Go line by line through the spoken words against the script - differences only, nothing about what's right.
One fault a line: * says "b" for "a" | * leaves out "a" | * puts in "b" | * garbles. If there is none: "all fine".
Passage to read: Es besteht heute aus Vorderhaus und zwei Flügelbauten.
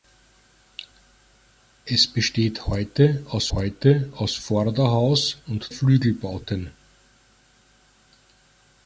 * puts in "heute aus"
* leaves out "zwei"